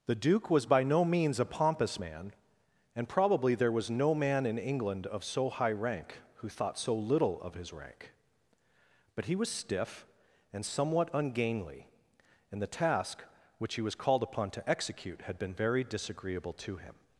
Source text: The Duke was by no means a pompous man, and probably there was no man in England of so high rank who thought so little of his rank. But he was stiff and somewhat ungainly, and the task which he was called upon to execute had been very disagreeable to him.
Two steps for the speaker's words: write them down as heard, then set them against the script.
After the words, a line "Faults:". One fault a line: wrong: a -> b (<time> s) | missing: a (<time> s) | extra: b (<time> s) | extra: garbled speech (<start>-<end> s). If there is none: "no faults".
The Duke was by no means a pompous man, and probably there was no man in England of so high rank who thought so little of his rank. But he was stiff and somewhat ungainly, and the task which he was called upon to execute had been very disagreeable to him.
Faults:
no faults